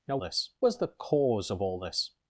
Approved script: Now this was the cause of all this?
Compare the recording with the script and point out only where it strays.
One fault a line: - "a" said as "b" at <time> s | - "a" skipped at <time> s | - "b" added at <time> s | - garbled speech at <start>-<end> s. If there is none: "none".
none